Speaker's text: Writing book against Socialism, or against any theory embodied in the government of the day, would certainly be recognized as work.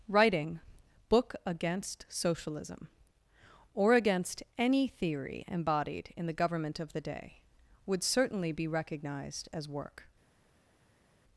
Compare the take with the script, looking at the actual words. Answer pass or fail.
pass